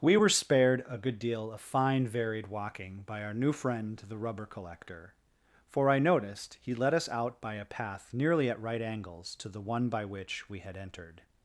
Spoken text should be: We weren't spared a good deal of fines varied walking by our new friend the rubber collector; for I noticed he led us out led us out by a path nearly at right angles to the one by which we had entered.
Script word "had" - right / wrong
right